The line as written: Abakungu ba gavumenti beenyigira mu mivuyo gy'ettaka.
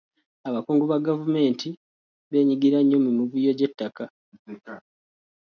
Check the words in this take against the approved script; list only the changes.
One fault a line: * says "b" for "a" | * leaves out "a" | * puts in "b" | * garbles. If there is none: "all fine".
* puts in "nnyo"